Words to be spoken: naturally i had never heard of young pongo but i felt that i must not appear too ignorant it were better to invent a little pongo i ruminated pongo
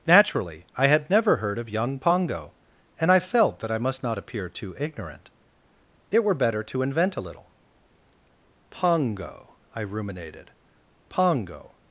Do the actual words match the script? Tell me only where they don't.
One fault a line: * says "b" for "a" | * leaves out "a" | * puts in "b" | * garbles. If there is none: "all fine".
* says "and" for "but"